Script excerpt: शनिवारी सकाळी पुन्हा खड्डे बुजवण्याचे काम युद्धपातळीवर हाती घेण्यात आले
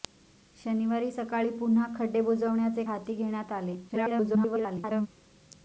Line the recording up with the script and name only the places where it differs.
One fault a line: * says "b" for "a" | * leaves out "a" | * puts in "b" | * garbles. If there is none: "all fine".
* leaves out "काम युद्धपातळीवर"
* garbles